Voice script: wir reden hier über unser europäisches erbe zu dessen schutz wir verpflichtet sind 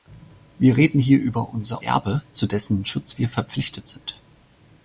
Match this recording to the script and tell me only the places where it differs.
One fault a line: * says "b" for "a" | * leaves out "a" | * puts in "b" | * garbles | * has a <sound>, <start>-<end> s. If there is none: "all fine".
* leaves out "europäisches"